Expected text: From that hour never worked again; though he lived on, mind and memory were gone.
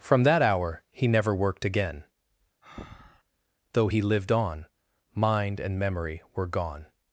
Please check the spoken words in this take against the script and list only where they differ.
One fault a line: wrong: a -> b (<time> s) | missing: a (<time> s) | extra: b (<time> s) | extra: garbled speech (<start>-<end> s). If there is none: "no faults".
extra: he (0.9 s)